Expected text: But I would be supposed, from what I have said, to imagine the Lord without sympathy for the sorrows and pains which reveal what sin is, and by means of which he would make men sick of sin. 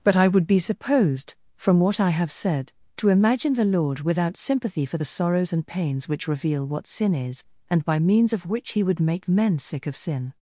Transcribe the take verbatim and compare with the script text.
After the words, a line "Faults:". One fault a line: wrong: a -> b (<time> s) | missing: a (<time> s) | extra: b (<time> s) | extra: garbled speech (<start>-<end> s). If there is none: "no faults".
But I would be supposed, from what I have said, to imagine the Lord without sympathy for the sorrows and pains which reveal what sin is, and by means of which he would make men sick of sin.
Faults:
no faults